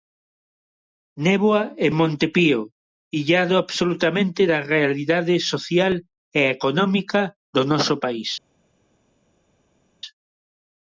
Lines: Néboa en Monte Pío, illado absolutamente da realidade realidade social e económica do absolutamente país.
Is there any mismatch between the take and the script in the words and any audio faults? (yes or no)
yes